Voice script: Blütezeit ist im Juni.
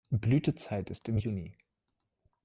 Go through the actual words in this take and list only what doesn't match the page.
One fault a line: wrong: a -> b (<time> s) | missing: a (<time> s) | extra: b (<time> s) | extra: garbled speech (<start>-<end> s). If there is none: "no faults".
no faults